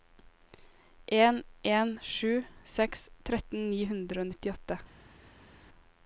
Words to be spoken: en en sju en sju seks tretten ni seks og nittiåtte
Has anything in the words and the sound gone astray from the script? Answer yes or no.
yes